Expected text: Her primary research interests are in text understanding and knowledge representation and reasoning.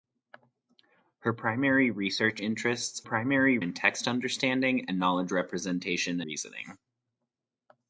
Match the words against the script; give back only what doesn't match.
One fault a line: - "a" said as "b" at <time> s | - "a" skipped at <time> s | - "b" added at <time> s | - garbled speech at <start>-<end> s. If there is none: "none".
- "are" said as "primary" at 3.0 s
- "and" skipped at 6.2 s